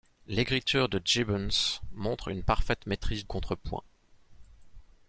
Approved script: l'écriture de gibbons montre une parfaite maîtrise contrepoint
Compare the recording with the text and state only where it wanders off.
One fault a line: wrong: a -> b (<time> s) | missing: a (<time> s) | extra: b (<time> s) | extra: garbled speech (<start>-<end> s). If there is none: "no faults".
no faults